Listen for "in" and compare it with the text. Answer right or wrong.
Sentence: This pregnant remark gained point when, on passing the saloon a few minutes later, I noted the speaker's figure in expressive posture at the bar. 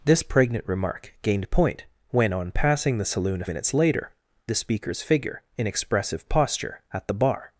right